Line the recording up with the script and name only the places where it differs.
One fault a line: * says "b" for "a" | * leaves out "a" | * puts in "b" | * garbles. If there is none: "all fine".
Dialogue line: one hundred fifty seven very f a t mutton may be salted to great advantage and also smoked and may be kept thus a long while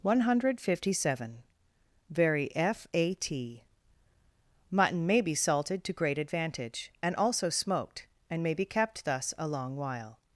all fine